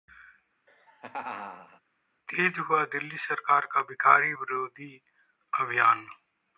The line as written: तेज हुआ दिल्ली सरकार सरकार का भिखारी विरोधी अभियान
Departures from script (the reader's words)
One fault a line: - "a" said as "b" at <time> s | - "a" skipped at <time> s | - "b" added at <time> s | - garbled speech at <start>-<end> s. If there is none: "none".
- "सरकार" skipped at 3.7 s